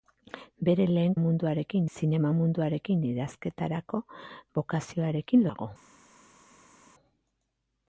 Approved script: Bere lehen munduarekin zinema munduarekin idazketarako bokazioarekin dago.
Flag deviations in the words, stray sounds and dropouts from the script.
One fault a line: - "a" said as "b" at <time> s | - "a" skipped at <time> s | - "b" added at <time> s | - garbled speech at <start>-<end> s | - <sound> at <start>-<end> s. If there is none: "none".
none